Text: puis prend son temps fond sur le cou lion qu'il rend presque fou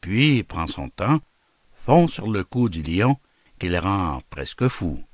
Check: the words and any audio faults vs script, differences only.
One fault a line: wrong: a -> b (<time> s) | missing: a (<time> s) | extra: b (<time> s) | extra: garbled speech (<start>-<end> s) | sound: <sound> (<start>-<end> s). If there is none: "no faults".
extra: du (2.7 s)